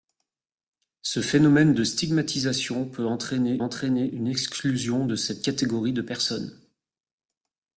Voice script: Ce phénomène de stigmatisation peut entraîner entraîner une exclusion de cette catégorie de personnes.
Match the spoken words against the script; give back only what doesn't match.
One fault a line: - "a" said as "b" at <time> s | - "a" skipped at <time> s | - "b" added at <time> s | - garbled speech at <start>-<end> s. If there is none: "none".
none